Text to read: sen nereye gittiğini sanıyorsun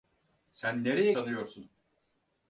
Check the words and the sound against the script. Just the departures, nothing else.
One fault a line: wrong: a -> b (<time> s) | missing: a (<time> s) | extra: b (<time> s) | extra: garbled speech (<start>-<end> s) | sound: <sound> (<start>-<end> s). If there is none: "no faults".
missing: gittiğini (1.1 s)